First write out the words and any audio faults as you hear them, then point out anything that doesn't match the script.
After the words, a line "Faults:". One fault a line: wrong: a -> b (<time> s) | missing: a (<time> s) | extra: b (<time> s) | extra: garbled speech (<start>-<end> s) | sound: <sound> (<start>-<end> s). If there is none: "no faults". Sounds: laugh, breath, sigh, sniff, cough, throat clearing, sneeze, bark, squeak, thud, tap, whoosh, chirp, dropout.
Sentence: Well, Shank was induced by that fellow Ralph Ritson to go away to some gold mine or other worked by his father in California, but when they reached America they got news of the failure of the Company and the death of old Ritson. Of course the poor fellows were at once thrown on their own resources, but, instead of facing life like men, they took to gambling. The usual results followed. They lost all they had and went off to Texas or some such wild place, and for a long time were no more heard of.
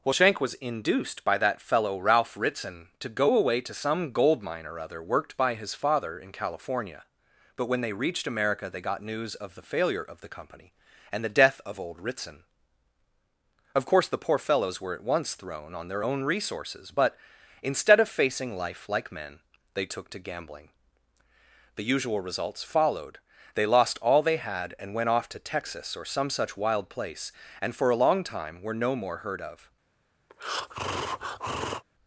Well, Shank was induced by that fellow Ralph Ritson to go away to some gold mine or other worked by his father in California, but when they reached America they got news of the failure of the Company and the death of old Ritson. Of course the poor fellows were at once thrown on their own resources, but, instead of facing life like men, they took to gambling. The usual results followed. They lost all they had and went off to Texas or some such wild place, and for a long time were no more heard of.
Faults:
sound: breath (30.3-31.8 s)